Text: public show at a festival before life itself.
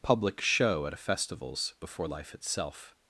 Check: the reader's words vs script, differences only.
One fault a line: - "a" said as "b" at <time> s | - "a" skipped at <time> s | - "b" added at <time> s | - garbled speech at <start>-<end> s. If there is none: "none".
- "festival" said as "festivals" at 1.0 s